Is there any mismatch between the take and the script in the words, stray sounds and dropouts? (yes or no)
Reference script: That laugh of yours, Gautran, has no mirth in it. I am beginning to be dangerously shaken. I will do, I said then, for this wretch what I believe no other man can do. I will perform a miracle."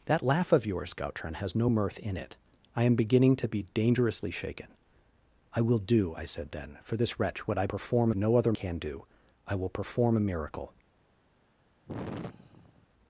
yes